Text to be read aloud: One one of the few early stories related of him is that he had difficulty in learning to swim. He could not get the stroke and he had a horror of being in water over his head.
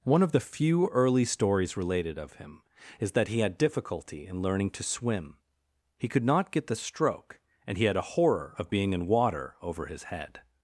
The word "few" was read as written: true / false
true